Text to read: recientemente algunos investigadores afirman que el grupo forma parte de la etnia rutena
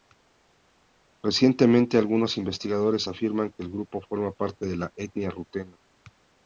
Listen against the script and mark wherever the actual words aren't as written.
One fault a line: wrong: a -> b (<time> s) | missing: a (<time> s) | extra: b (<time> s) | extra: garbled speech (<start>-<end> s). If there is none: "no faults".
no faults